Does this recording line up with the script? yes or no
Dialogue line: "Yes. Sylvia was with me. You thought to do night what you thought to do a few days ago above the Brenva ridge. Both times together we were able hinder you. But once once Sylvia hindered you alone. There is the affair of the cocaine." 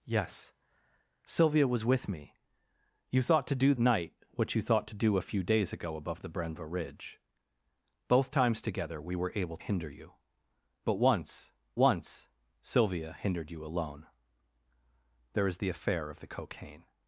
yes